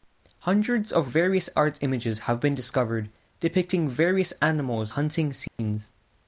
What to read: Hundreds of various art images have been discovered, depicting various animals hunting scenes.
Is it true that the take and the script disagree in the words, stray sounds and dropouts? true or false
true